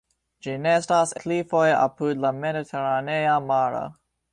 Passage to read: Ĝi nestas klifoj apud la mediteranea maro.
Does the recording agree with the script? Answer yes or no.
yes